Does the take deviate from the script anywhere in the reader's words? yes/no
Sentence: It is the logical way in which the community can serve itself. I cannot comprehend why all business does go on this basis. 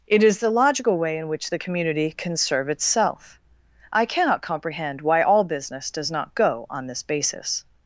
yes